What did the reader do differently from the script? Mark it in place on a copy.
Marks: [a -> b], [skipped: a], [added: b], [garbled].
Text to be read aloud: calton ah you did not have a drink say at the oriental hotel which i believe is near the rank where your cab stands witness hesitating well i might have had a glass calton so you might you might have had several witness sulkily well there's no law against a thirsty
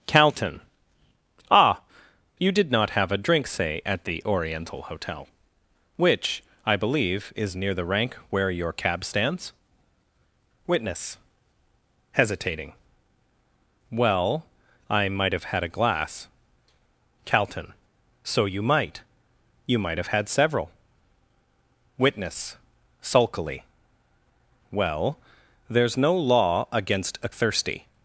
calton ah you did not have a drink say at the oriental hotel which i believe is near the rank where your cab stands witness hesitating well i might have had a glass calton so you might you might have had several witness sulkily well there's no law against a thirsty